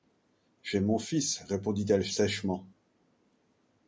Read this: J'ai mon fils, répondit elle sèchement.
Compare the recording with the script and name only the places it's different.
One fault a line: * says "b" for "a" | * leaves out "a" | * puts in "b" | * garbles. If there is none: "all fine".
all fine